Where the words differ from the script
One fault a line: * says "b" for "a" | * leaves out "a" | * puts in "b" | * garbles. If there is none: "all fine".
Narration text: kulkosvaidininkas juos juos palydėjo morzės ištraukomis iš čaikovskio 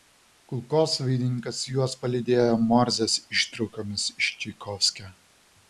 * leaves out "juos"